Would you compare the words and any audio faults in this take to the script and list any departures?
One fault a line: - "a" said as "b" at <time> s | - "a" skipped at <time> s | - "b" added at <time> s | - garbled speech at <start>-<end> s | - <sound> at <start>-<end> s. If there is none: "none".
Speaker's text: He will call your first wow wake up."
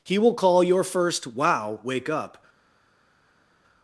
none